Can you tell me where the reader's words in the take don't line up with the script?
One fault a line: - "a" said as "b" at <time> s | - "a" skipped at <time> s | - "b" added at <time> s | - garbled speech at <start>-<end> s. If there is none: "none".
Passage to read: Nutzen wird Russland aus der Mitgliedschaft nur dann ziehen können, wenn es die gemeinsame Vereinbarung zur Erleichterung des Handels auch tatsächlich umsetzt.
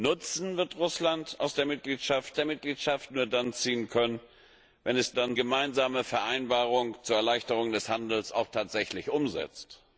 - "der Mitgliedschaft" added at 2.3 s
- "die" said as "dann" at 5.1 s